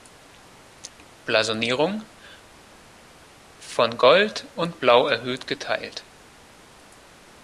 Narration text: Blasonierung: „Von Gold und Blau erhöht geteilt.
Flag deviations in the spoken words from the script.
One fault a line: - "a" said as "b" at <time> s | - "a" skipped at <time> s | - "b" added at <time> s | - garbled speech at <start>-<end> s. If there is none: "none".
none